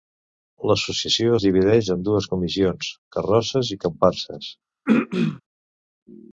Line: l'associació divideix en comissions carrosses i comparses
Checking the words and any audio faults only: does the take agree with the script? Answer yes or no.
no